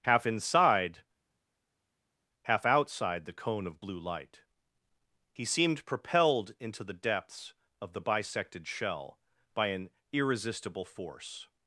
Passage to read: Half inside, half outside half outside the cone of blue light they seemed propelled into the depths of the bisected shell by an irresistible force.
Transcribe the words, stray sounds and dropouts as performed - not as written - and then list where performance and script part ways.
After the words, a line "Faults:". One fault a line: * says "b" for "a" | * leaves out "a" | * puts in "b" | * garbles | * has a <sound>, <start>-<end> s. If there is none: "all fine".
Half inside, half outside the cone of blue light he seemed propelled into the depths of the bisected shell by an irresistible force.
Faults:
* leaves out "half outside"
* says "he" for "they"